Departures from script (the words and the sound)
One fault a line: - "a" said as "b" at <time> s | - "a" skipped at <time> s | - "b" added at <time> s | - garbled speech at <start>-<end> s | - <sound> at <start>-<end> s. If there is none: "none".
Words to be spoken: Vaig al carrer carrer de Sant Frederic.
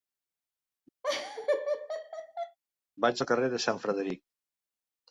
- laugh at 1.0-2.6 s
- "carrer" skipped at 3.5 s